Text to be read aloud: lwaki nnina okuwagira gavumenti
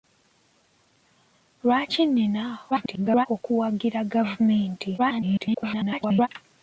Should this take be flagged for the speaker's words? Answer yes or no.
yes